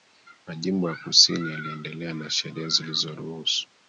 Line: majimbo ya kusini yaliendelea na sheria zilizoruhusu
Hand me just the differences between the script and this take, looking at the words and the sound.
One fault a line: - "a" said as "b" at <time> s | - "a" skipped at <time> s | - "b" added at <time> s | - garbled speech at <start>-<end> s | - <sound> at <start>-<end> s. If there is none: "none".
none